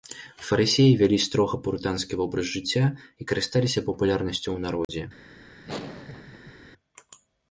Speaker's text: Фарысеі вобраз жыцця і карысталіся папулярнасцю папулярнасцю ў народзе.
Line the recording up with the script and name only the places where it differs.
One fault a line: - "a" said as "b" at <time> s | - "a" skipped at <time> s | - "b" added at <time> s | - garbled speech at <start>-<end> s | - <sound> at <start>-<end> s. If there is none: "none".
- "вялі строга пурытанскі" added at 1.0 s
- "папулярнасцю" skipped at 4.5 s
- dropout at 4.8-4.9 s
- laugh at 5.6-6.7 s